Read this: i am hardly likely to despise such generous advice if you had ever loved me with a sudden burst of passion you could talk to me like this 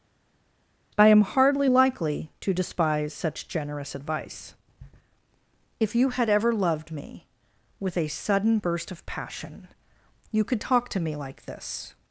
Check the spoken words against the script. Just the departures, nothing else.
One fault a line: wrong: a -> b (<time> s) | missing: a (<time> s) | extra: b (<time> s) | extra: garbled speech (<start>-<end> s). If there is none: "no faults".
no faults